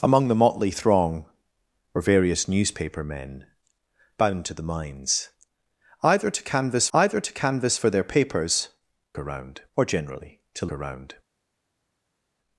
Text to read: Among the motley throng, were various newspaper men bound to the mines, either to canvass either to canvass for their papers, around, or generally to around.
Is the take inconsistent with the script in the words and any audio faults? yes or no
no